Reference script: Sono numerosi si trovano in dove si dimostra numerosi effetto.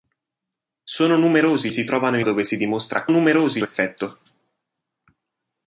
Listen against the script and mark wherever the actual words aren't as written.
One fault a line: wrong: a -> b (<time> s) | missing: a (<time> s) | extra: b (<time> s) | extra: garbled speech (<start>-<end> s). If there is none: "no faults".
no faults